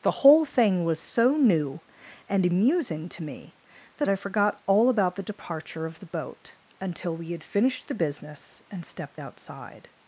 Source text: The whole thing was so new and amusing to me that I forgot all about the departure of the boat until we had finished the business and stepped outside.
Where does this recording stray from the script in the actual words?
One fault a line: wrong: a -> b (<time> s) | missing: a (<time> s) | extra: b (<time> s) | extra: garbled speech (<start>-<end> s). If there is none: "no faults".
no faults